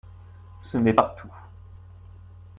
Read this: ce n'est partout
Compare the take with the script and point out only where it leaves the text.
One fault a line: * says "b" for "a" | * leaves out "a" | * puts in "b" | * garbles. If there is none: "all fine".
all fine